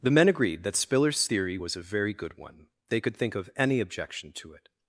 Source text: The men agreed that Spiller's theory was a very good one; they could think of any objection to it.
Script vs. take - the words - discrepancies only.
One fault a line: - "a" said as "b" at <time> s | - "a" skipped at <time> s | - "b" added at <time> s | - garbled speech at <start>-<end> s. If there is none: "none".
none